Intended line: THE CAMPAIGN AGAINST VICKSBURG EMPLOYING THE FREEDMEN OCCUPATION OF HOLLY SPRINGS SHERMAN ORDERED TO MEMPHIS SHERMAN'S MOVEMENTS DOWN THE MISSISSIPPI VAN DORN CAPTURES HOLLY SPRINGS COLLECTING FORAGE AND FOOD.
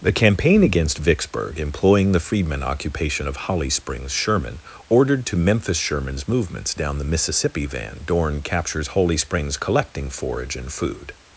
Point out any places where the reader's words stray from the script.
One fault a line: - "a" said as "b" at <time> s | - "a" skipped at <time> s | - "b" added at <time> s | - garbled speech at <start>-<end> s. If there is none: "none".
none